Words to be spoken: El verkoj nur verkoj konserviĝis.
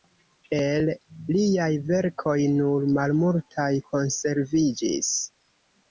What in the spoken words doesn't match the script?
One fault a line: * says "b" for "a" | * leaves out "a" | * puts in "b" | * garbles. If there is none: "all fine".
* puts in "liaj"
* says "malmultaj" for "verkoj"